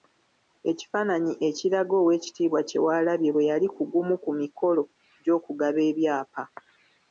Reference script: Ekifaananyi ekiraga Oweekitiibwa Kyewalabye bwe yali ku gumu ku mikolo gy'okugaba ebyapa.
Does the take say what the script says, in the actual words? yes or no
yes